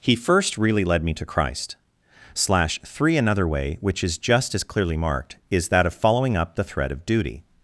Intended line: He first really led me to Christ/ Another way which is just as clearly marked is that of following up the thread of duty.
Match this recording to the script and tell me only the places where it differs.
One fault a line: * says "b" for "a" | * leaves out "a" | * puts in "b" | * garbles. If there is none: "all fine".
* puts in "slash three"